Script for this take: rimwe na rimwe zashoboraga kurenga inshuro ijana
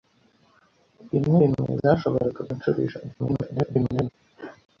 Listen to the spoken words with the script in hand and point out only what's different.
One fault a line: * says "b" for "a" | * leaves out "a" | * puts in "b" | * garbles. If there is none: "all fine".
* leaves out "na"
* leaves out "kurenga"
* garbles